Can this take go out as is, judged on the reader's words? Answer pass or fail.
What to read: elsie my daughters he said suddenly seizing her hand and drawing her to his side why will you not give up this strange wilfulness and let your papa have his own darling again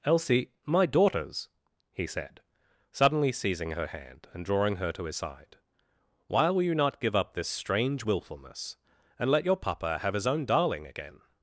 pass